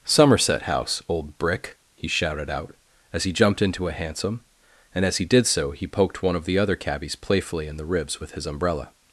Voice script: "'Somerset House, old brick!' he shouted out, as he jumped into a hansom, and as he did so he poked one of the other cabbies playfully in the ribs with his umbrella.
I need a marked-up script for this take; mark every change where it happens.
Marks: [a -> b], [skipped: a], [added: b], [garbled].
"'Somerset House, old brick!' he shouted out, as he jumped into a hansom, and as he did so he poked one of the other cabbies playfully in the ribs with his umbrella.